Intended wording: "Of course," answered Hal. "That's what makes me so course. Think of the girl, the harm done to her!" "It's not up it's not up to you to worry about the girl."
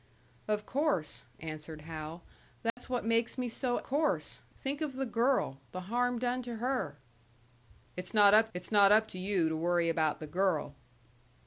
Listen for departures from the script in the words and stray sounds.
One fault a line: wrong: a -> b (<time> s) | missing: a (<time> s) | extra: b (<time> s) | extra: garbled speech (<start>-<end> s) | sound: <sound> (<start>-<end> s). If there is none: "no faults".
sound: dropout (2.7-2.8 s)